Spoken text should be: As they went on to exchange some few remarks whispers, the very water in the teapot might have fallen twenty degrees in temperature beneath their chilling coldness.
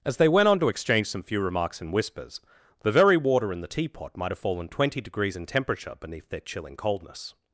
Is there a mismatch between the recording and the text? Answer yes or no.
yes